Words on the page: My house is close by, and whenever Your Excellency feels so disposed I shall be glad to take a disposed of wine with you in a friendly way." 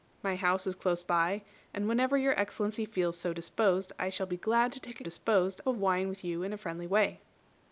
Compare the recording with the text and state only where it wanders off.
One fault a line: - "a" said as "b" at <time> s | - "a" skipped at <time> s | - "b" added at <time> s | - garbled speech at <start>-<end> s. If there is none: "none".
none